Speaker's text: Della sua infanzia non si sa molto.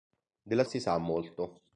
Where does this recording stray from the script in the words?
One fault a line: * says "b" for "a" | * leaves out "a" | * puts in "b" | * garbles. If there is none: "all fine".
* leaves out "sua infanzia non"